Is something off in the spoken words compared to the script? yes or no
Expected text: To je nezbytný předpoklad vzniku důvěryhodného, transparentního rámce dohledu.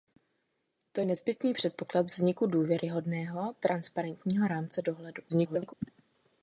yes